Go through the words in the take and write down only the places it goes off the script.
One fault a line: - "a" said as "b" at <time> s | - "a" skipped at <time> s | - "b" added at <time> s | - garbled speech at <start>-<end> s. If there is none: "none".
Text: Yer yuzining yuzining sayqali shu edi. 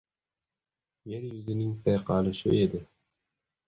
- "yuzining" skipped at 1.7 s